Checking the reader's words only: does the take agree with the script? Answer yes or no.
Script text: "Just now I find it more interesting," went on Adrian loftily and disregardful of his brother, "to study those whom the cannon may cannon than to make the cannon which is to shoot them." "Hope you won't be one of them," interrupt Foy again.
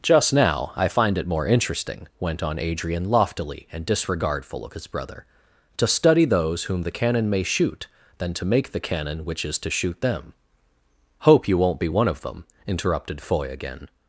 no